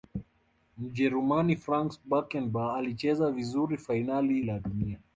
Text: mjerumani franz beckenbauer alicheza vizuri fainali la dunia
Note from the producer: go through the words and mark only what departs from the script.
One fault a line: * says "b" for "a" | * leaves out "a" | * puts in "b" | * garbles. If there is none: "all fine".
all fine